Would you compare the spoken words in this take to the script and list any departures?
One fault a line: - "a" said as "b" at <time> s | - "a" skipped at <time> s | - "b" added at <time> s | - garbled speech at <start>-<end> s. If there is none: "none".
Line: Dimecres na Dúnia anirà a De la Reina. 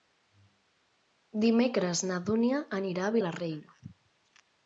none